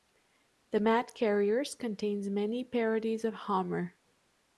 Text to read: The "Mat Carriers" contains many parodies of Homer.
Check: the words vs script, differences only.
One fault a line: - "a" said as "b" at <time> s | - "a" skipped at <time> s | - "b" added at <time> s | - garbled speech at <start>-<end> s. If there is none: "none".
none